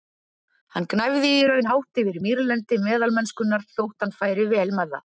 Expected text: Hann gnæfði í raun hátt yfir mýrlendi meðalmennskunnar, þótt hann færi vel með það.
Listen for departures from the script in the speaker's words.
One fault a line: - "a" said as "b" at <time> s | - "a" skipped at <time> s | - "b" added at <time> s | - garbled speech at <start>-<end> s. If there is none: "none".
none